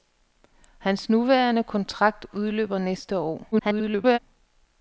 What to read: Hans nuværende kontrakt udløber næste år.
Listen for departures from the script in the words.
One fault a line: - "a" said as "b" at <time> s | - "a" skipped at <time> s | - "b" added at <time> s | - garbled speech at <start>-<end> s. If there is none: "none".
- garbled speech at 3.5-4.2 s